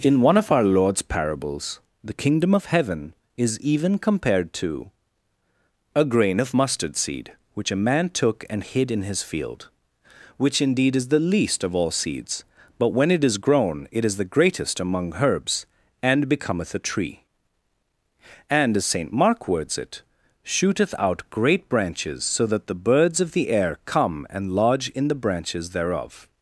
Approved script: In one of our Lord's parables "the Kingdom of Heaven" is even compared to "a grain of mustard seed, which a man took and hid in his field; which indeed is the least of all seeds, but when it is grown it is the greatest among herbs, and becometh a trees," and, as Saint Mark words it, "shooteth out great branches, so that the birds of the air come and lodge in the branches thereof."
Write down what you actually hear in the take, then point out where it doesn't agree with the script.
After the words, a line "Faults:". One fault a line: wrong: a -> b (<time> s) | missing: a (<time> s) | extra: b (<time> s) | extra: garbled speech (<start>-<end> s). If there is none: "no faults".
In one of our Lord's parables "the Kingdom of Heaven" is even compared to "a grain of mustard seed, which a man took and hid in his field; which indeed is the least of all seeds, but when it is grown it is the greatest among herbs, and becometh a tree," and, as Saint Mark words it, "shooteth out great branches, so that the birds of the air come and lodge in the branches thereof."
Faults:
wrong: trees -> tree (16.8 s)